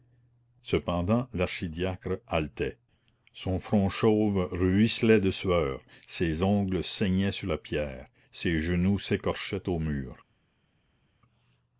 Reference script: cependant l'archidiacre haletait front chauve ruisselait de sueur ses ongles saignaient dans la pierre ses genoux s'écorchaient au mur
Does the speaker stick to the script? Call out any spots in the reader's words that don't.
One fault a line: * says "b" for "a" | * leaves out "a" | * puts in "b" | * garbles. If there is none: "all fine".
* puts in "son"
* says "sur" for "dans"